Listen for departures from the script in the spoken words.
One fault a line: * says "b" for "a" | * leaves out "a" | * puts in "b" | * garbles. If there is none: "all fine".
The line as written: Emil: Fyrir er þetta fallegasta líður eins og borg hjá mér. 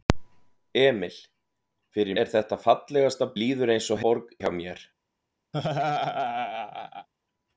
all fine